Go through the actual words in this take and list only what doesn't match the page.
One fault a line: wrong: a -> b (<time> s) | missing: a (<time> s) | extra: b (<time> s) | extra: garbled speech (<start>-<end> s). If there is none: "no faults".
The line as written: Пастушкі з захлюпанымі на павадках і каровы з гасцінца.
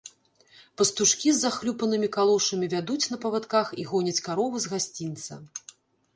extra: калошамі вядуць (2.2 s)
extra: гоняць (3.9 s)